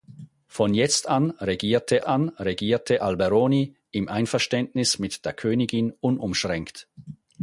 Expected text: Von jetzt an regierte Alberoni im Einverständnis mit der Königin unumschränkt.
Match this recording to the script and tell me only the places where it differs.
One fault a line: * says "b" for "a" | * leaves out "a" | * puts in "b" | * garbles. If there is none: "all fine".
* puts in "an regierte"